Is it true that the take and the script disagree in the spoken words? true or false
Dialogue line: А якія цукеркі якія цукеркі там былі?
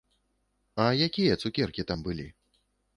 true